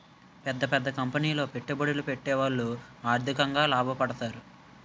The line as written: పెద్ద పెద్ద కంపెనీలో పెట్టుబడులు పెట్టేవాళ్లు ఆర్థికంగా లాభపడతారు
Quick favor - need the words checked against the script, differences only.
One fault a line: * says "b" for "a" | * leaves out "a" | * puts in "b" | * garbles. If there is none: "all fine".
all fine